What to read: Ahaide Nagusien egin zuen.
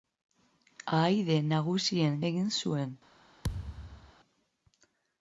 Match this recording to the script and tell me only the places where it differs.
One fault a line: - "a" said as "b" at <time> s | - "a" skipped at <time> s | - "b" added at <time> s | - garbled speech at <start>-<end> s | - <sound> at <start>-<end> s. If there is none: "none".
- thud at 3.4-4.1 s